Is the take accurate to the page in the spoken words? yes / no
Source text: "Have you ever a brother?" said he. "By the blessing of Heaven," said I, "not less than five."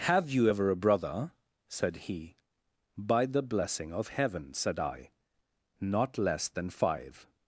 yes